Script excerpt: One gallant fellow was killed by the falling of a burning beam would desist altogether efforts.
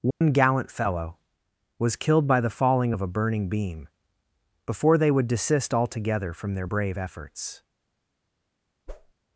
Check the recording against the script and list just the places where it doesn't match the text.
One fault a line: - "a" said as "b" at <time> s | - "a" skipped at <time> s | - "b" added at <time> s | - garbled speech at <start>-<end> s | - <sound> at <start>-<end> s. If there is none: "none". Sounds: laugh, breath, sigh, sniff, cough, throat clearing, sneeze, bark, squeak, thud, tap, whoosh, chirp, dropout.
- dropout at 0.1-0.2 s
- "before they" added at 4.7 s
- "from their brave" added at 6.3 s
- whoosh at 8.9-9.1 s